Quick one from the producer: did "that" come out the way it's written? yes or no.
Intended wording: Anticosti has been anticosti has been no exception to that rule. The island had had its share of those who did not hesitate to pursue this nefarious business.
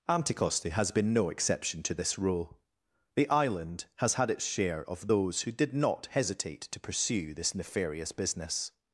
no